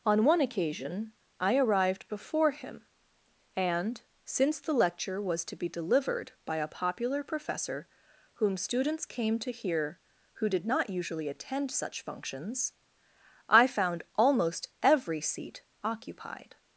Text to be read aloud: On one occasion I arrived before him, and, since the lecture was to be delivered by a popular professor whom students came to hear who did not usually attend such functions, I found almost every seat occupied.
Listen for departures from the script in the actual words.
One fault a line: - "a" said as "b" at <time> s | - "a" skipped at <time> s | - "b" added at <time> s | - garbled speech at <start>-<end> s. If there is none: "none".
none